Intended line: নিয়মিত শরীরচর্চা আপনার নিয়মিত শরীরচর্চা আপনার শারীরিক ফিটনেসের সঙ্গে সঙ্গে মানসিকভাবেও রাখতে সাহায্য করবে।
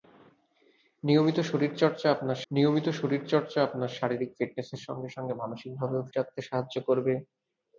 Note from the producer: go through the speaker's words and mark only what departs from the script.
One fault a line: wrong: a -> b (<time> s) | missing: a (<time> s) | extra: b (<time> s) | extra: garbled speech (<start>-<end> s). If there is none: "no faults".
no faults